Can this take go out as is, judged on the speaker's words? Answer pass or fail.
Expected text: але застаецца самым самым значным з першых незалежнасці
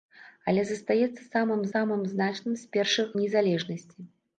pass